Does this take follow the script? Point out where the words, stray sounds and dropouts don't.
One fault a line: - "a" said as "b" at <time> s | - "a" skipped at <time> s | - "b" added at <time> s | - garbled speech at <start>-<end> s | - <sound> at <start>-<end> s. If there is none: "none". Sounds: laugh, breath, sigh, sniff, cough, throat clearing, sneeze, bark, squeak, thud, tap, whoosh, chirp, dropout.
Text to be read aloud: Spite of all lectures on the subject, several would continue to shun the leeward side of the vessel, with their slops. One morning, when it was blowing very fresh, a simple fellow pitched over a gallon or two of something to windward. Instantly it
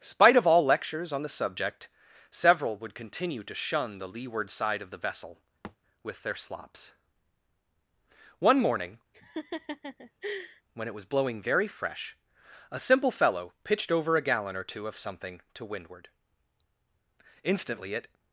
- thud at 5.6-5.8 s
- laugh at 9.1-10.6 s